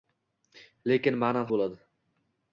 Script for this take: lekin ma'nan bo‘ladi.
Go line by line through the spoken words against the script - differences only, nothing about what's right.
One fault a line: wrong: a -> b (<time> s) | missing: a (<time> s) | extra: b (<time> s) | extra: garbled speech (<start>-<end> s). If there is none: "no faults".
no faults